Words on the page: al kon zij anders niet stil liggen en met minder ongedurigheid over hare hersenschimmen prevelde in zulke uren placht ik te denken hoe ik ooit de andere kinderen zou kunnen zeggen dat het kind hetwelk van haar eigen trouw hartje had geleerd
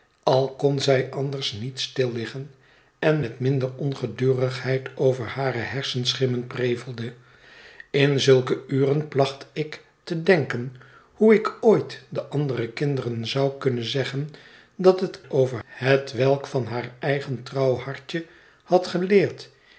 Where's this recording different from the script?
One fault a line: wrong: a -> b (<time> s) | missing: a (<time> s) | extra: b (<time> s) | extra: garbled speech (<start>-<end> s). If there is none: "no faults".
wrong: kind -> over (15.3 s)